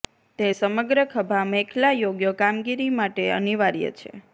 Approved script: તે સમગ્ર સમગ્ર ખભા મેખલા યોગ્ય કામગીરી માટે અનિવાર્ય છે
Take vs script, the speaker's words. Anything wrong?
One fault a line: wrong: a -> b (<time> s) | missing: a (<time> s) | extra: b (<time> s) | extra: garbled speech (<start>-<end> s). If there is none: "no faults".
missing: સમગ્ર (1.0 s)